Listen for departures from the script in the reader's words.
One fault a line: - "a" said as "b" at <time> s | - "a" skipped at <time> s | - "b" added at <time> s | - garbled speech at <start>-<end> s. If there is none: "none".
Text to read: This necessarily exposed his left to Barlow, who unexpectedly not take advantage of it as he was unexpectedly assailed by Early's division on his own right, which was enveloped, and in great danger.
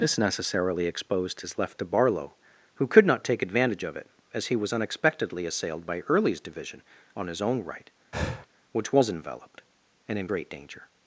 - "unexpectedly" said as "could" at 2.9 s